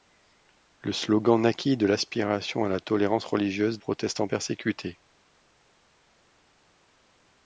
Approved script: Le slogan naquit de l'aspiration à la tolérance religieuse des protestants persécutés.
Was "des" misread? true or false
true